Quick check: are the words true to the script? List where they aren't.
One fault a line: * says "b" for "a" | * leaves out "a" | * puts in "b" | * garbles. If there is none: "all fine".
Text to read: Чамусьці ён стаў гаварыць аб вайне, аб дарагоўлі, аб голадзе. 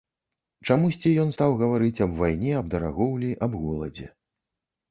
all fine